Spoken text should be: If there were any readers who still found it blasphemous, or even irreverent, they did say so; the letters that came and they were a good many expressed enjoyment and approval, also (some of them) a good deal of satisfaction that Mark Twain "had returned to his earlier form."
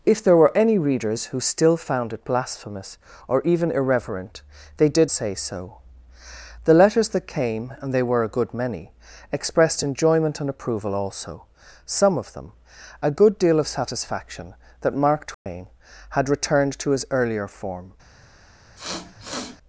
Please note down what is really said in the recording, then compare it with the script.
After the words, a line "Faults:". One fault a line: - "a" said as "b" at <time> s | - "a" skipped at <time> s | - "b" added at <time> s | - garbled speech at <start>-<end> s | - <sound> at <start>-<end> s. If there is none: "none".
If there were any readers who still found it blasphemous, or even irreverent, they did say so; the letters that came and they were a good many expressed enjoyment and approval, also (some of them) a good deal of satisfaction that Mark Twain "had returned to his earlier form."
Faults:
- dropout at 15.3-15.5 s
- sniff at 18.8-19.6 s